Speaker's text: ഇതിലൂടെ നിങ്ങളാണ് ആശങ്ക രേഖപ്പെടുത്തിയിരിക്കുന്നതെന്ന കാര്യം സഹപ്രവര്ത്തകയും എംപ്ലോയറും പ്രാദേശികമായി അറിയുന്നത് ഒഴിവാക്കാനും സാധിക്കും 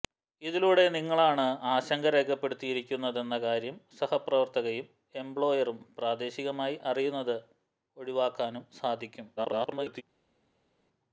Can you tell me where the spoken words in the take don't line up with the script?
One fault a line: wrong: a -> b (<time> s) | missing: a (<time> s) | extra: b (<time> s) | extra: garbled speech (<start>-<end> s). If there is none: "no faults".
extra: garbled speech (9.4-10.0 s)